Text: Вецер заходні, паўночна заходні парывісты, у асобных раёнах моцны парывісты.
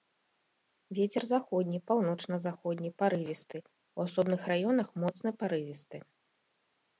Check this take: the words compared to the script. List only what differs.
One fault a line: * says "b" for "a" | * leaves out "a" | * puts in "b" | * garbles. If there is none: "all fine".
all fine